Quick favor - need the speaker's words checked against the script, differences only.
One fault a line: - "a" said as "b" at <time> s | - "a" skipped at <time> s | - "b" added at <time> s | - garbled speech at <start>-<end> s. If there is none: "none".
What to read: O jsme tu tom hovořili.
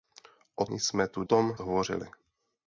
none